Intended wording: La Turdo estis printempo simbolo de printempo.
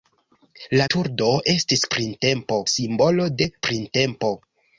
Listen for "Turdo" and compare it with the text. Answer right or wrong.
right